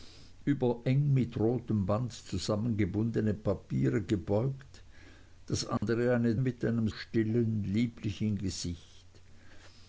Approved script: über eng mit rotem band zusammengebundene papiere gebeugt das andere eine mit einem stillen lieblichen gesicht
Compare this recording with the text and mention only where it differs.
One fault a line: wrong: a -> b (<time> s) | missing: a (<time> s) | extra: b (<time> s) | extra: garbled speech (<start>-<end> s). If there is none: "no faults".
no faults